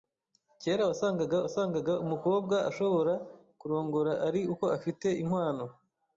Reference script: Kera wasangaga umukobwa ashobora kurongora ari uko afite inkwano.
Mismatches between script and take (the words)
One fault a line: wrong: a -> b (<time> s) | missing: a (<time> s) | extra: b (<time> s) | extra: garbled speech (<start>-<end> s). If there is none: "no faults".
extra: wasangaga (1.4 s)